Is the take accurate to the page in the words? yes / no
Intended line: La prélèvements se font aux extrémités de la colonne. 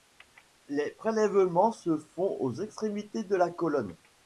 no